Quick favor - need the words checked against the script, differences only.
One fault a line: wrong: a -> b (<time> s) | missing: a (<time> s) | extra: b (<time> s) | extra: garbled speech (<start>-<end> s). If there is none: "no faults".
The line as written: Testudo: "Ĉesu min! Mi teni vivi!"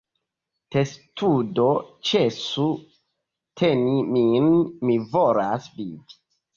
extra: teni (3.6 s)
wrong: teni -> volas (5.2 s)